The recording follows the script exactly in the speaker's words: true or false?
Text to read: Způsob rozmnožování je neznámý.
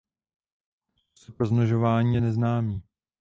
true